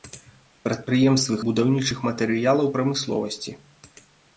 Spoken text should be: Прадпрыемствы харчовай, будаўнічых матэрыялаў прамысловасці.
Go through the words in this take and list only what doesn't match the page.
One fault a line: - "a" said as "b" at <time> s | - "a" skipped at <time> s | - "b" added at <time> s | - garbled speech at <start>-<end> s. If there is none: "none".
- "харчовай" skipped at 1.4 s